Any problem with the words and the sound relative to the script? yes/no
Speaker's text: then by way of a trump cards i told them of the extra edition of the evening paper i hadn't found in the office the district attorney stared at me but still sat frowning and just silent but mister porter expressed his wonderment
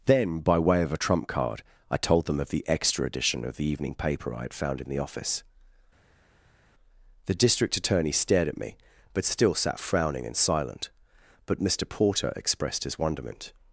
yes